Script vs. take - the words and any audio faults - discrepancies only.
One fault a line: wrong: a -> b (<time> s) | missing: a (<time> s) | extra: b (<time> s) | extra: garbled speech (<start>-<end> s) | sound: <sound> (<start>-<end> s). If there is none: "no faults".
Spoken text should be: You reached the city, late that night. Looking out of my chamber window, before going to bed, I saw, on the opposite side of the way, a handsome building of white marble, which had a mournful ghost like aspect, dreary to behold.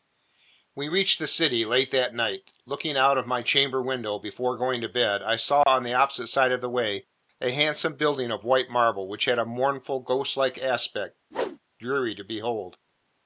wrong: You -> We (0.7 s)
sound: dropout (5.6-5.7 s)
sound: whoosh (11.3-11.6 s)